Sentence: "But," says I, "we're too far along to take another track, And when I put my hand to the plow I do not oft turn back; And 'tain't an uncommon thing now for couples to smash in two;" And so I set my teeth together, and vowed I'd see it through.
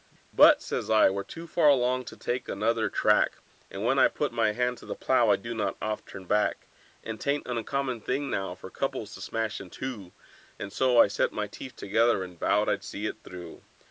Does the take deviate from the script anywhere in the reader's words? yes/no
no